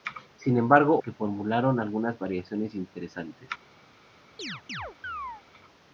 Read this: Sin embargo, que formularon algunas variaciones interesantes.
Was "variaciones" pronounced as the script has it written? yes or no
yes